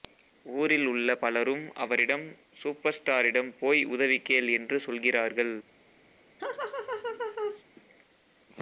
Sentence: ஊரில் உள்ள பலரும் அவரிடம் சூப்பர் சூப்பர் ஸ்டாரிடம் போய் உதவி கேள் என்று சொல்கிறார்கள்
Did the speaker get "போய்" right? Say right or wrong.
right